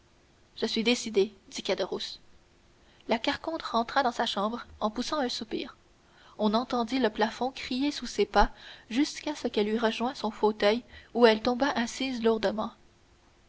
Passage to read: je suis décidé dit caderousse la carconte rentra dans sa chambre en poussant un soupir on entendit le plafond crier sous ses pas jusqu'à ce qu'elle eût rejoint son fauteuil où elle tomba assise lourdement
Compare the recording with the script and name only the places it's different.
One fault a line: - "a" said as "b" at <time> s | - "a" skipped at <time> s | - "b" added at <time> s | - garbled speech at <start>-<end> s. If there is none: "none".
none